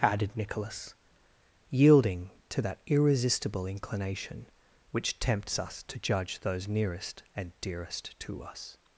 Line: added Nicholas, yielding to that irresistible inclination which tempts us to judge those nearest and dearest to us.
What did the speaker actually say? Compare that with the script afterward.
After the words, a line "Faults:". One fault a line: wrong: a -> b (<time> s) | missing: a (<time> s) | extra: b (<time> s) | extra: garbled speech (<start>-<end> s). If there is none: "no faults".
added Nicholas, yielding to that irresistible inclination which tempts us to judge those nearest and dearest to us.
Faults:
no faults